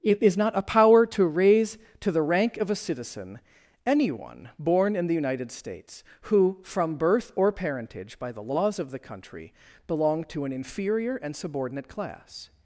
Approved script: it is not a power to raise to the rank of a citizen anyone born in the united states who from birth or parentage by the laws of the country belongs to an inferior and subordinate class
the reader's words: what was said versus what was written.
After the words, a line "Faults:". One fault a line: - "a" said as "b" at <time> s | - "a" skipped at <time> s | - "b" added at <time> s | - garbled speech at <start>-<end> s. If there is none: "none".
it is not a power to raise to the rank of a citizen anyone born in the united states who from birth or parentage by the laws of the country belong to an inferior and subordinate class
Faults:
- "belongs" said as "belong" at 9.9 s